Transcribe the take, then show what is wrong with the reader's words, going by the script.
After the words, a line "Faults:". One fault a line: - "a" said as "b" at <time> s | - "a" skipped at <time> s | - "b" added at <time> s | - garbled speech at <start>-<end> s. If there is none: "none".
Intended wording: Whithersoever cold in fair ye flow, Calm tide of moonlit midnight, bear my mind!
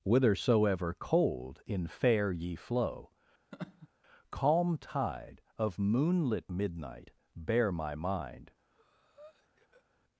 Whithersoever cold in fair ye flow, Calm tide of moonlit midnight, bear my mind!
Faults:
none